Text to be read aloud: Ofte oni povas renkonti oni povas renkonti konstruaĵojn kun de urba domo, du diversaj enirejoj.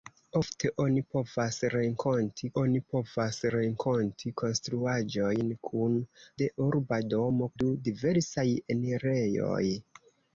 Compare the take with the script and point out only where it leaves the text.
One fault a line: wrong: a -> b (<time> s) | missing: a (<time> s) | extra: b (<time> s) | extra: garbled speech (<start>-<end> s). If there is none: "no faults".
no faults